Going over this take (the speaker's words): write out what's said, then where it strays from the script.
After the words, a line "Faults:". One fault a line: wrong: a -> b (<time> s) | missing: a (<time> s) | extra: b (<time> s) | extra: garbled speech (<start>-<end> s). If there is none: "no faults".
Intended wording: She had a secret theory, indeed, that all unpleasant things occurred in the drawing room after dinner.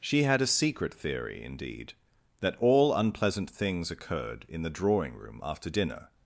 She had a secret theory, indeed, that all unpleasant things occurred in the drawing room after dinner.
Faults:
no faults